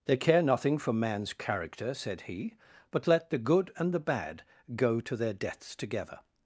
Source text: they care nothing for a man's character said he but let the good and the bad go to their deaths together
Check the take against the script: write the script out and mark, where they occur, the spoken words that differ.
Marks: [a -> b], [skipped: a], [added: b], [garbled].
they care nothing for [skipped: a] man's character said he but let the good and the bad go to their deaths together